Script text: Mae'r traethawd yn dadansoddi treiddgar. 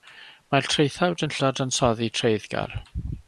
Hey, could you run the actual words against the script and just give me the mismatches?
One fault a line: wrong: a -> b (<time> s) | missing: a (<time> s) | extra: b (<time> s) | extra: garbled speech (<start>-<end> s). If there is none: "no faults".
no faults